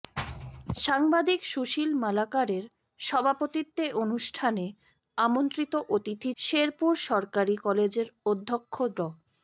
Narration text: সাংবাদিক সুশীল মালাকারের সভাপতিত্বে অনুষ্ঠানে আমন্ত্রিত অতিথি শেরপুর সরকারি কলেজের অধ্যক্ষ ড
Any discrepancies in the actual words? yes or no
no